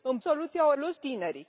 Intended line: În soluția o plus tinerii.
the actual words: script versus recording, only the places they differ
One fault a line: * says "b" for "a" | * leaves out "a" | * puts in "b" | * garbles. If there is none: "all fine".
all fine